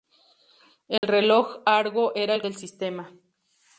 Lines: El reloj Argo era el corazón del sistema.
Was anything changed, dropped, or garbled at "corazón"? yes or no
yes